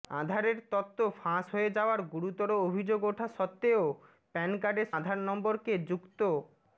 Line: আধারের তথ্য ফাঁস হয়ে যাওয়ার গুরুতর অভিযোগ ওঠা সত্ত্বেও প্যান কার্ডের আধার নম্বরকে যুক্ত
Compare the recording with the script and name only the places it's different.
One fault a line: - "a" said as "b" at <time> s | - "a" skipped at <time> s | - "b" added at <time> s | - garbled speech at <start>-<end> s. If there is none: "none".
none